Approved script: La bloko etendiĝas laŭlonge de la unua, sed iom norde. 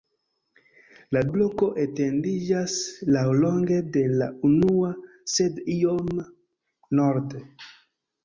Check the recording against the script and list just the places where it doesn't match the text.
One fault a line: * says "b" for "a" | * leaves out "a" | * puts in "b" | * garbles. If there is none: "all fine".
all fine